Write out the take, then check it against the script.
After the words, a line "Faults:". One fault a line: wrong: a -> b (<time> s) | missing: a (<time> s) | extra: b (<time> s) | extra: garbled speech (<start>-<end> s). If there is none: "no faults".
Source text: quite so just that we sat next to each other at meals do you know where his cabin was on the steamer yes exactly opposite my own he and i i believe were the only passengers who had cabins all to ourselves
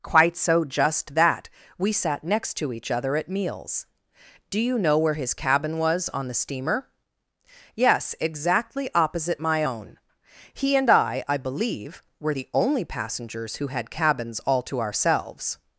quite so just that we sat next to each other at meals do you know where his cabin was on the steamer yes exactly opposite my own he and i i believe were the only passengers who had cabins all to ourselves
Faults:
no faults